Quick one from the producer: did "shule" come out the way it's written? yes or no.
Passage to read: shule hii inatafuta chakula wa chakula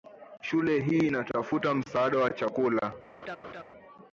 yes